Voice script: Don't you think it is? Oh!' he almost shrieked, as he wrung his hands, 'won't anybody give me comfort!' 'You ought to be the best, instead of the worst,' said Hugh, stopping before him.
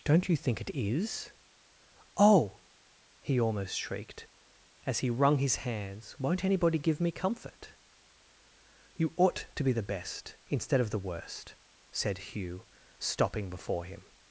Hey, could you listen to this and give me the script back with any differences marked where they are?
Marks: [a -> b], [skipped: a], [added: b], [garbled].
Don't you think it is? Oh!' he almost shrieked, as he wrung his hands, 'won't anybody give me comfort!' 'You ought to be the best, instead of the worst,' said Hugh, stopping before him.